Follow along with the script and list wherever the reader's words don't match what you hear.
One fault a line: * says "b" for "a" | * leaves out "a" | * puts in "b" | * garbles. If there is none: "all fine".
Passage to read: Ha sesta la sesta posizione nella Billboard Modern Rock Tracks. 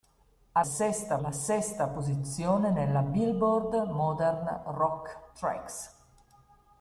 all fine